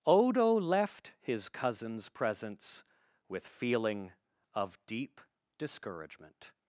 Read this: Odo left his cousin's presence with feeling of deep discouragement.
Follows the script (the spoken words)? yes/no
yes